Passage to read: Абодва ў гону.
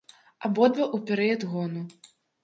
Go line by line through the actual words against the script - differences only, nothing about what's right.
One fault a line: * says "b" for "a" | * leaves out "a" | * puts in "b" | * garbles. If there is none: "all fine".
* puts in "перыяд"